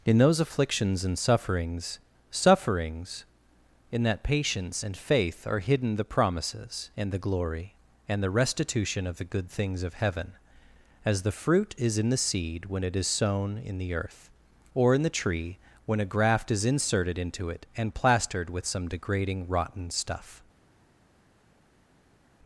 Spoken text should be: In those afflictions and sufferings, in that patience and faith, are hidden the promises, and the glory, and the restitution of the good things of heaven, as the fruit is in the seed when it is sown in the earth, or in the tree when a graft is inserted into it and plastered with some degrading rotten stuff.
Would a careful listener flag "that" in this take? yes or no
no